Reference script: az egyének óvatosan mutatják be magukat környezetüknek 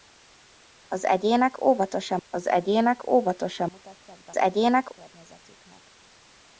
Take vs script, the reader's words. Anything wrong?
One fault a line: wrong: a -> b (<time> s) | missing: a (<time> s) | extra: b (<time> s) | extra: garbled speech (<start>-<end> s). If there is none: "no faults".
extra: az egyének óvatosan (2.3 s)
wrong: magukat -> egyének (4.4 s)